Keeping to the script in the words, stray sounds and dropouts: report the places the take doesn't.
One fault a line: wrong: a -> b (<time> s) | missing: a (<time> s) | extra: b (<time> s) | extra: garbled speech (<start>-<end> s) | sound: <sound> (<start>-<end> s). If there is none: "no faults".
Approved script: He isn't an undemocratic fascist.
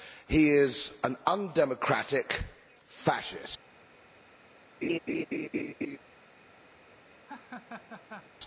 wrong: isn't -> is (0.5 s)
sound: laugh (4.8-6.0 s)
sound: laugh (7.3-8.3 s)